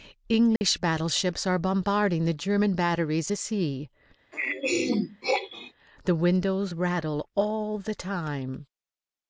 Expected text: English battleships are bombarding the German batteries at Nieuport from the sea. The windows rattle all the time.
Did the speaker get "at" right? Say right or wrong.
wrong